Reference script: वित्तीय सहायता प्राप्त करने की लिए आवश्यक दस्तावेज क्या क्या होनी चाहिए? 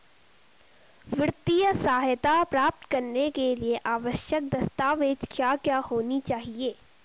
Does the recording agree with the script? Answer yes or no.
no